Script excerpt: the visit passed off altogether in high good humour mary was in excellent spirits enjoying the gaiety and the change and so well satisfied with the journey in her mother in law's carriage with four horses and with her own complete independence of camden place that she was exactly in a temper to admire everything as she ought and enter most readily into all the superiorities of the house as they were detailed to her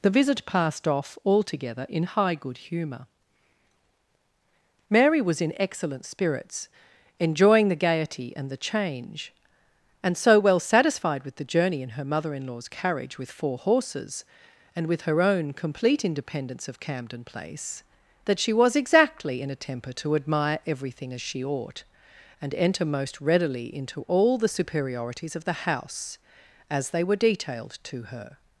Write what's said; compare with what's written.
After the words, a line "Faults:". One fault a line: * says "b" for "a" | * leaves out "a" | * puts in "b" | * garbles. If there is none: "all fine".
the visit passed off altogether in high good humour mary was in excellent spirits enjoying the gaiety and the change and so well satisfied with the journey in her mother in law's carriage with four horses and with her own complete independence of camden place that she was exactly in a temper to admire everything as she ought and enter most readily into all the superiorities of the house as they were detailed to her
Faults:
all fine